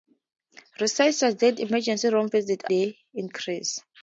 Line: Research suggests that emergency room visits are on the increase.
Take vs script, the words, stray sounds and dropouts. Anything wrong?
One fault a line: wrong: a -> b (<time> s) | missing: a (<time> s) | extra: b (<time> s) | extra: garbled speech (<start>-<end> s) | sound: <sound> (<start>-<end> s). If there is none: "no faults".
missing: that (1.6 s)
missing: are on (2.7 s)